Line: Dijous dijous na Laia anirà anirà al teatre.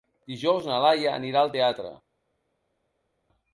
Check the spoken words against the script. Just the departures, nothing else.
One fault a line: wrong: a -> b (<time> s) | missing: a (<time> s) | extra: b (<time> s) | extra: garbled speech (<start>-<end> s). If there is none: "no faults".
missing: dijous (0.7 s)
missing: anirà (1.4 s)